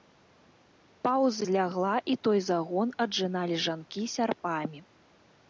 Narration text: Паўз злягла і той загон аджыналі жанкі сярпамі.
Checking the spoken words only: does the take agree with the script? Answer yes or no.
yes